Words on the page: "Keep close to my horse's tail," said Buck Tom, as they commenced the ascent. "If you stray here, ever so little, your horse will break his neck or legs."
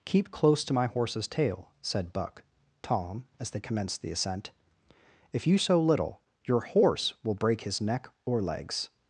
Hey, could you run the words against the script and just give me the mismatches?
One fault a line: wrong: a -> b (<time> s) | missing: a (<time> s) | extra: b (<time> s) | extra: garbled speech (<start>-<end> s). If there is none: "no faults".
missing: stray here ever (5.6 s)